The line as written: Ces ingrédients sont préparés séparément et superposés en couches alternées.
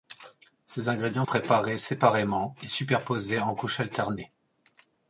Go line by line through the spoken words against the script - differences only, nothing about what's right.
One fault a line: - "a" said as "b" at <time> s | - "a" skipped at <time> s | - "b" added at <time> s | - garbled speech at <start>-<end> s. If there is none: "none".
- "sont" skipped at 1.2 s